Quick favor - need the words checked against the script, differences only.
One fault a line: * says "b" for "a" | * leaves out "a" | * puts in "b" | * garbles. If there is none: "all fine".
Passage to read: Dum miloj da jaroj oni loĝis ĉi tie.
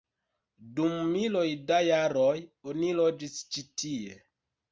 all fine